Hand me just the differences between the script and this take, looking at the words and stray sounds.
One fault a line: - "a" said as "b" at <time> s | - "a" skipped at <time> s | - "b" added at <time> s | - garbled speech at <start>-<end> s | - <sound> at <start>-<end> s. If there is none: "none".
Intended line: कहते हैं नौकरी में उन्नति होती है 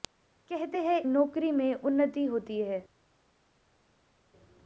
none